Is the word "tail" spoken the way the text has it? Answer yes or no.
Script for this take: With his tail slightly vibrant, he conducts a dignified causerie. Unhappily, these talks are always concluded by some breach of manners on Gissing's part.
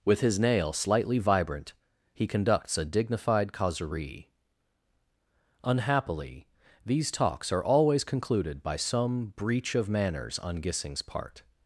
no